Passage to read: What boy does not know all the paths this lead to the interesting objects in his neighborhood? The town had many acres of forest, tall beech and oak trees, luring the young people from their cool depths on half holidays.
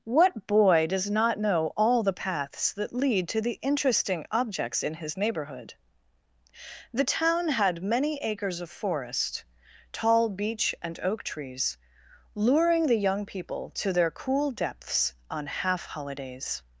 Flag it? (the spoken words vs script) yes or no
yes